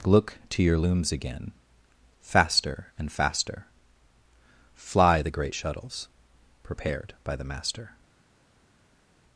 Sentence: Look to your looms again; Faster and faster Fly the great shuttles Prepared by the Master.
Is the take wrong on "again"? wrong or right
right